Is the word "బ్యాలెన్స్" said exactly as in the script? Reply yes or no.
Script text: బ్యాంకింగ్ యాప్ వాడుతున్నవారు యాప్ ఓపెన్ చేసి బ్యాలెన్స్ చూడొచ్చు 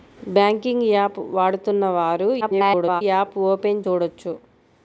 no